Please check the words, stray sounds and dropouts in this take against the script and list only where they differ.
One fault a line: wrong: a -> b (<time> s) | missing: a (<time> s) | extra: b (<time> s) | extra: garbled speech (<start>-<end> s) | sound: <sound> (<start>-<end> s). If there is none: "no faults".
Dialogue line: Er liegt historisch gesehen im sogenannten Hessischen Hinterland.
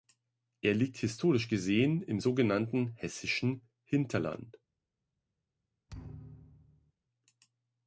sound: thud (5.9-6.9 s)